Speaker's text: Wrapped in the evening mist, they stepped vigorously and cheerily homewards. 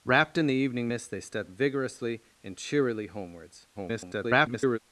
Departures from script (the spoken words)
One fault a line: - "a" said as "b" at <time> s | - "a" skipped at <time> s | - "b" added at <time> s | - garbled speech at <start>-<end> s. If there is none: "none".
- garbled speech at 3.7-4.8 s